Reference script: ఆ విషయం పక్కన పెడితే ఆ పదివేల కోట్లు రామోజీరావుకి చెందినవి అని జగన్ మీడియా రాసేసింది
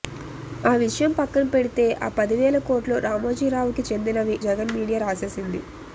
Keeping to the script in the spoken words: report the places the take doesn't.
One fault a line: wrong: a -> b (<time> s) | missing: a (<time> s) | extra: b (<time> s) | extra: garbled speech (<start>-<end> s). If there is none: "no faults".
missing: అని (4.4 s)